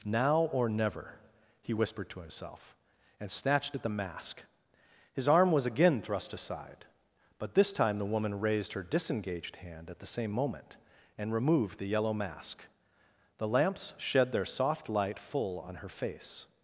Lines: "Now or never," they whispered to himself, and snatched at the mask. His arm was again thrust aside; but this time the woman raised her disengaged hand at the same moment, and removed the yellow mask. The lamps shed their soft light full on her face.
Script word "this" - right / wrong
right